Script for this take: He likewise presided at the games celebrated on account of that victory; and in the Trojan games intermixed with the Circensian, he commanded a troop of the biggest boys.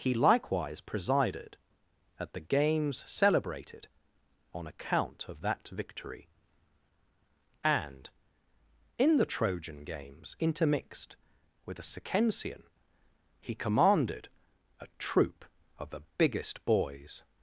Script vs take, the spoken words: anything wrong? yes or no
yes